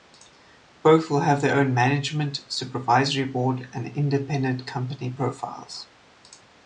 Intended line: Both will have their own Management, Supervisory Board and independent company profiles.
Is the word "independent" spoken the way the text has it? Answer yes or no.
yes